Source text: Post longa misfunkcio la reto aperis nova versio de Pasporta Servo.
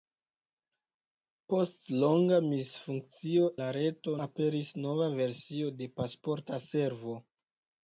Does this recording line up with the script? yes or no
yes